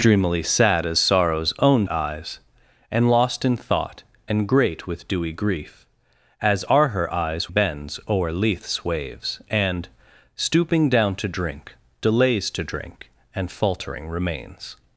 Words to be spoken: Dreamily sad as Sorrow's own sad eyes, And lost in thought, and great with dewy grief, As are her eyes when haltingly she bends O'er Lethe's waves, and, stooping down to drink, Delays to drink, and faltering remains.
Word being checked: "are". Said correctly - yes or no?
yes